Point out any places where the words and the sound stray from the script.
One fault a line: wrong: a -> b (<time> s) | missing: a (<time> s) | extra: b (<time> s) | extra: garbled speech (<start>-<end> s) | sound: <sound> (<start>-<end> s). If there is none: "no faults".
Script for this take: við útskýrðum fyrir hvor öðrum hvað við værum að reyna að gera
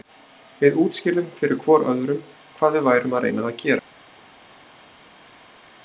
no faults